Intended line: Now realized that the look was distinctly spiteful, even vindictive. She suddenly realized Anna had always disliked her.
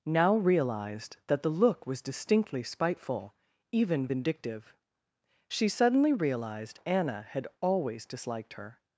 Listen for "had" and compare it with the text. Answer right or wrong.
right